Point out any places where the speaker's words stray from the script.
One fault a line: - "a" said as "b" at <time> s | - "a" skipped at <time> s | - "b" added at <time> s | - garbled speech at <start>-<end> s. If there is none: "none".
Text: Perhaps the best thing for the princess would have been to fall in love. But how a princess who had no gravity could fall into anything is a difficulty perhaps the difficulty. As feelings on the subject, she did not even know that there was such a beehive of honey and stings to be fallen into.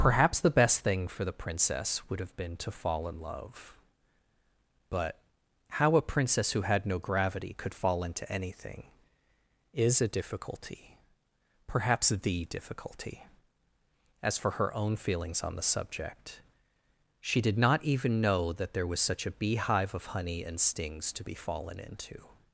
- "for her own" added at 14.4 s